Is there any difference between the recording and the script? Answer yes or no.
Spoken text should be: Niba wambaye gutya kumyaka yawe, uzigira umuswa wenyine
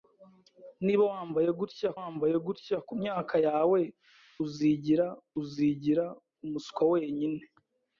yes